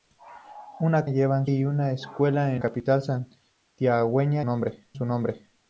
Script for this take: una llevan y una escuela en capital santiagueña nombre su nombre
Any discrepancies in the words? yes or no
no